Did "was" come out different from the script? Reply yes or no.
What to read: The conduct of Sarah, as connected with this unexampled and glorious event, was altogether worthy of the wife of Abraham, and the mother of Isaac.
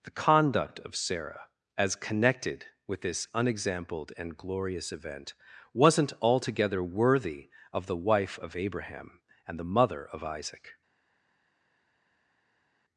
yes